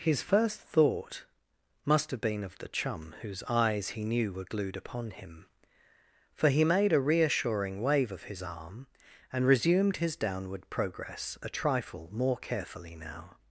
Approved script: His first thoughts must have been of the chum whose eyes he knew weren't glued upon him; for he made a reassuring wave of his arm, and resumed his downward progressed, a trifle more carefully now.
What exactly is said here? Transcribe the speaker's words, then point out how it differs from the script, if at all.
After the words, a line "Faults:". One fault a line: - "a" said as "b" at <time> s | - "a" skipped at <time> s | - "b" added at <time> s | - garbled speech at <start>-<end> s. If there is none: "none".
His first thought must have been of the chum whose eyes he knew were glued upon him; for he made a reassuring wave of his arm, and resumed his downward progress, a trifle more carefully now.
Faults:
- "thoughts" said as "thought" at 0.6 s
- "weren't" said as "were" at 4.3 s
- "progressed" said as "progress" at 10.7 s